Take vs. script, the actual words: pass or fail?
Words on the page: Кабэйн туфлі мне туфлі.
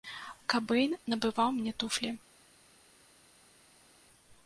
fail